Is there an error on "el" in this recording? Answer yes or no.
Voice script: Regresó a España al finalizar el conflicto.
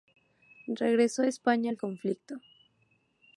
yes